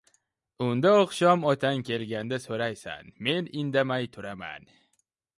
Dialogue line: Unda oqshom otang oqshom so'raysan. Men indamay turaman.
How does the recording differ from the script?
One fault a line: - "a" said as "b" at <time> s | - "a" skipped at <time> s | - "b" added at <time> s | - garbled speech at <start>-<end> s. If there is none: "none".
- "oqshom" said as "kelganda" at 1.9 s